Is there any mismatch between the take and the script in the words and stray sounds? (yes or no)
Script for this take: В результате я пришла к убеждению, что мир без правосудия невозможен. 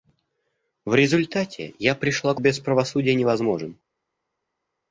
yes